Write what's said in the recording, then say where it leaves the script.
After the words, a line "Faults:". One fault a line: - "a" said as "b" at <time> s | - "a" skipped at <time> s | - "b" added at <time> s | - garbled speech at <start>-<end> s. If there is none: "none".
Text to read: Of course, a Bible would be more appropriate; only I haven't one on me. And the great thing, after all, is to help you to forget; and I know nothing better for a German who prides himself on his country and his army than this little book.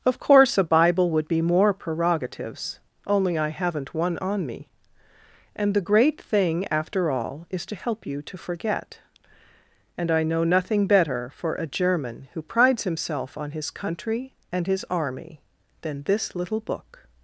Of course, a Bible would be more prerogatives; only I haven't one on me. And the great thing, after all, is to help you to forget; and I know nothing better for a German who prides himself on his country and his army than this little book.
Faults:
- "appropriate" said as "prerogatives" at 1.8 s